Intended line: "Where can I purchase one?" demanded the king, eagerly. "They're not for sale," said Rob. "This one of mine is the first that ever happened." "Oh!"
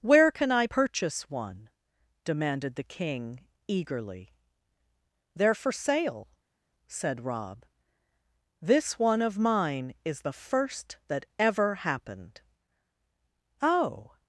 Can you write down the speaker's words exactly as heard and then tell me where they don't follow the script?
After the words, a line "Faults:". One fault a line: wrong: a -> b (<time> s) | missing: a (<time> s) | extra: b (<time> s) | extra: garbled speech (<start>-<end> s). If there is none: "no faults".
"Where can I purchase one?" demanded the king, eagerly. "They're for sale," said Rob. "This one of mine is the first that ever happened." "Oh!"
Faults:
missing: not (5.5 s)